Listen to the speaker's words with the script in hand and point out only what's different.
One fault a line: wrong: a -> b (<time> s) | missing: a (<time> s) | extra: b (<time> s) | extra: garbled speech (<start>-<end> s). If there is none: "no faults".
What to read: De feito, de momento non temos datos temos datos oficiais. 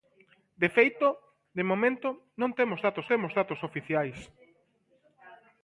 no faults